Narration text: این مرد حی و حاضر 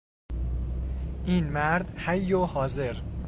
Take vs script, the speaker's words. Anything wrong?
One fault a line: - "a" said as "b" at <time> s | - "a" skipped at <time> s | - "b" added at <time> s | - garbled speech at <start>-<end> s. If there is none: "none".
none